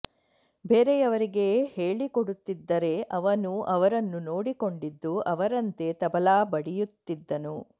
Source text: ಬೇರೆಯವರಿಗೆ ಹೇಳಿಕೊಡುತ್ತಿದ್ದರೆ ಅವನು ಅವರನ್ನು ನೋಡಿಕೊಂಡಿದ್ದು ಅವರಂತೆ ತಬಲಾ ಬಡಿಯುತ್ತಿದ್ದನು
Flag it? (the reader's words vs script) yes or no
no